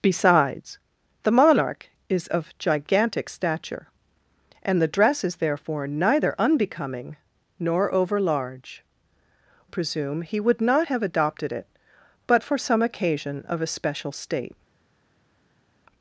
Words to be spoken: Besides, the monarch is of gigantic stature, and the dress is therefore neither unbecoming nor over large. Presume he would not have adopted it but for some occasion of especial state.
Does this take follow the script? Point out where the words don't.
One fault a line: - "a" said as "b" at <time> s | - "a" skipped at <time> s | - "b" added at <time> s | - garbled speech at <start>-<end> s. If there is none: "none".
none